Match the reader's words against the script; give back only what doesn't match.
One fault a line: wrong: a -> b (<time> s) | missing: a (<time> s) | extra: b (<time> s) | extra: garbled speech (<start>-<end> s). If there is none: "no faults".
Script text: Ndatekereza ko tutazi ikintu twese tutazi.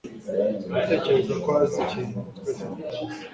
wrong: tutazi -> azi (1.6 s)